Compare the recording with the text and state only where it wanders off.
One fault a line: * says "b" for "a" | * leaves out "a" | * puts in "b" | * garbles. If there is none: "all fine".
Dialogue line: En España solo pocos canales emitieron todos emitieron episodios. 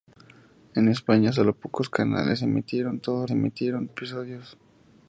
all fine